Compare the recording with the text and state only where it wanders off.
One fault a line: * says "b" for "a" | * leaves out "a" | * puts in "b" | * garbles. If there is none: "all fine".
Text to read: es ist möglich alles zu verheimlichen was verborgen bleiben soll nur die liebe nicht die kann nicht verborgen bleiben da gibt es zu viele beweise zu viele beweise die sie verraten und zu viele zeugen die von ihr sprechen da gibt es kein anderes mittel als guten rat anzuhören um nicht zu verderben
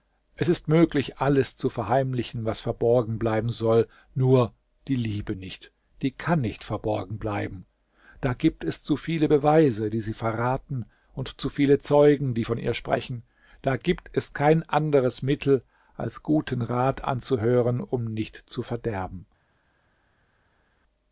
* leaves out "zu viele beweise"